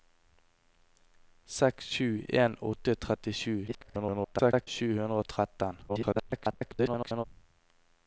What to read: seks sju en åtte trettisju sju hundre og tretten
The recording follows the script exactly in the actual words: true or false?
false